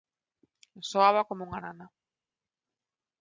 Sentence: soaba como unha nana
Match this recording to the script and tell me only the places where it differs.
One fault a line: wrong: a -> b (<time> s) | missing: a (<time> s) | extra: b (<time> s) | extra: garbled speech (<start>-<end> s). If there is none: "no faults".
no faults